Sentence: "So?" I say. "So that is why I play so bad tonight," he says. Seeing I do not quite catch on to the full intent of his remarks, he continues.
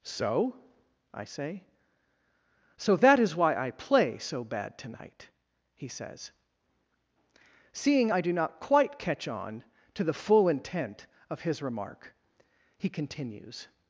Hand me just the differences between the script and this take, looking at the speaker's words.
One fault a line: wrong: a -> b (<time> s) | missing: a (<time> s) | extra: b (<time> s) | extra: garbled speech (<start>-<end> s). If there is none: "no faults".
wrong: remarks -> remark (11.6 s)